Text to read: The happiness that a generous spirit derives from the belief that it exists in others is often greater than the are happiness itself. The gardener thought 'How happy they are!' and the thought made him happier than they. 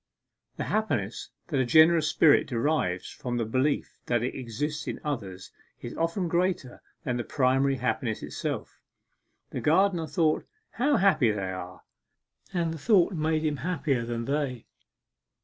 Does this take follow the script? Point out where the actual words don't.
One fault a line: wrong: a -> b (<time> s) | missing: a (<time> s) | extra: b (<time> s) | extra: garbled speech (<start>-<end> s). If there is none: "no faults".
wrong: are -> primary (7.2 s)